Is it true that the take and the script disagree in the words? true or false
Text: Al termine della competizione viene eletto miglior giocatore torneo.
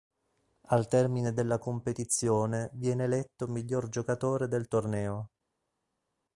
true